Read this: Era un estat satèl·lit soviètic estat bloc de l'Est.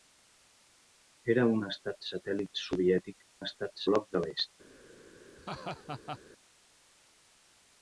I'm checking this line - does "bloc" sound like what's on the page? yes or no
yes